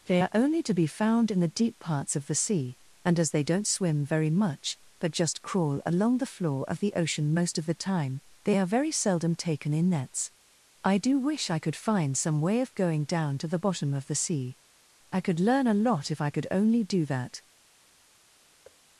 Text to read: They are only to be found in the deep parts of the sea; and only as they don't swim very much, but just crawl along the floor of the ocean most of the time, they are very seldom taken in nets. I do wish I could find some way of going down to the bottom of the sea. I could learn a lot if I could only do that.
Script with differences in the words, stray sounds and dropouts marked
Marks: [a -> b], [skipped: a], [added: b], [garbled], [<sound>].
They are only to be found in the deep parts of the sea; and [skipped: only] as they don't swim very much, but just crawl along the floor of the ocean most of the time, they are very seldom taken in nets. I do wish I could find some way of going down to the bottom of the sea. I could learn a lot if I could only do that. [thud]